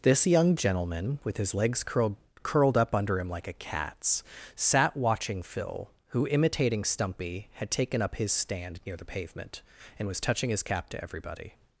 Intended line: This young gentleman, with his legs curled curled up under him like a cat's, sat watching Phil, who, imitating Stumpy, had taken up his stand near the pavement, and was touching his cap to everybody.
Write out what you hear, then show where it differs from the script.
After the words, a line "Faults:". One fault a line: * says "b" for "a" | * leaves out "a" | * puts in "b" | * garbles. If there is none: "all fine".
This young gentleman, with his legs curled curled up under him like a cat's, sat watching Phil, who, imitating Stumpy, had taken up his stand near the pavement, and was touching his cap to everybody.
Faults:
all fine